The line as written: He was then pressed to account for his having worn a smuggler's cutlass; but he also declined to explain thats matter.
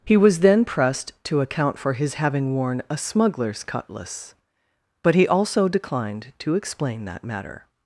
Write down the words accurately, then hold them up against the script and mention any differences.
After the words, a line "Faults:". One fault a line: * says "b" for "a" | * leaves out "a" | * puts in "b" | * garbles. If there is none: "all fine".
He was then pressed to account for his having worn a smuggler's cutlass; but he also declined to explain that matter.
Faults:
* says "that" for "thats"